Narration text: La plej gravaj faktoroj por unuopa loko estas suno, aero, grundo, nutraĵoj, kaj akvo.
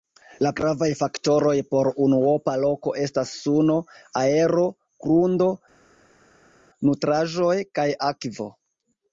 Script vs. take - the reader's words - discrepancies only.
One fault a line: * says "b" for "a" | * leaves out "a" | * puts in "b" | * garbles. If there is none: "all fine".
* leaves out "plej"